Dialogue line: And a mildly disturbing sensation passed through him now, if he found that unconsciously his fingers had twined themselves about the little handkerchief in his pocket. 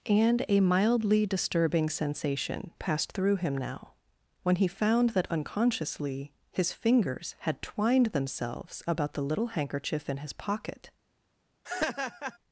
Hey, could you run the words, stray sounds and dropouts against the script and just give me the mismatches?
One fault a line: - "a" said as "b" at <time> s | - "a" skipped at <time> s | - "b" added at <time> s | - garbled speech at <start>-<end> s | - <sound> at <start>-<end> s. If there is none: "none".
- "if" said as "when" at 4.4 s
- laugh at 11.6-12.4 s